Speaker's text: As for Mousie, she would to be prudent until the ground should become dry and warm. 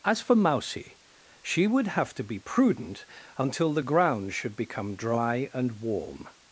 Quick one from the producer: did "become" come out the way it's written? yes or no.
yes